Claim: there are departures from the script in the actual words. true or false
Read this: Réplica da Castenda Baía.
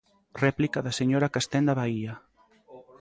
true